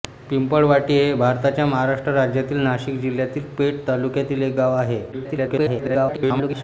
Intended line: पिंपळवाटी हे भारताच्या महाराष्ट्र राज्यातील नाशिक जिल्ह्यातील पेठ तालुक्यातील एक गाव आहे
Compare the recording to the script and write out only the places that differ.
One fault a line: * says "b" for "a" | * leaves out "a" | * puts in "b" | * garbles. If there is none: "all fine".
* garbles